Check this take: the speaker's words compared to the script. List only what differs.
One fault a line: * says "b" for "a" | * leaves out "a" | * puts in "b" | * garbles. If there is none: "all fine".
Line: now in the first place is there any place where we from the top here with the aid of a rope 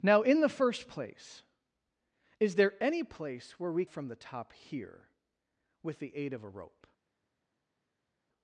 all fine